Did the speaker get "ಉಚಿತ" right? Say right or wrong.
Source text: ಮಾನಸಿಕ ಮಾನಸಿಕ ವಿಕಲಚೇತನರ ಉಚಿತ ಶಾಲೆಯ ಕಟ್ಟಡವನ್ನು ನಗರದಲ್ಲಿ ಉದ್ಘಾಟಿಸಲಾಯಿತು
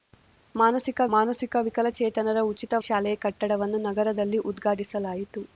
right